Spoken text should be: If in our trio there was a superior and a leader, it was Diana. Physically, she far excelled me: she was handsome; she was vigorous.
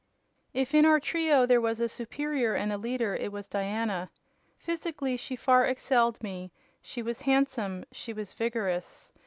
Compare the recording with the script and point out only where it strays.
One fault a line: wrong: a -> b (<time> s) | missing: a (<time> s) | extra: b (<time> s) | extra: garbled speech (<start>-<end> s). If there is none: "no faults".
no faults